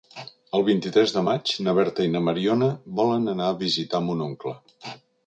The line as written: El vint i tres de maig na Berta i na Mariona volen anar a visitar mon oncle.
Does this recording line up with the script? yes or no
yes